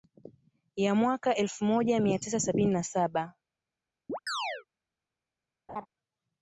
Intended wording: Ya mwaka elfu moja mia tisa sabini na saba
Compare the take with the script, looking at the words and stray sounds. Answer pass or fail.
fail